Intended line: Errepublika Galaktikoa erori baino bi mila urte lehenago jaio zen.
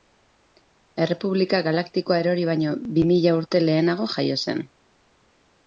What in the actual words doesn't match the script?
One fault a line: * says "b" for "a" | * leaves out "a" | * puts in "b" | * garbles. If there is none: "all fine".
all fine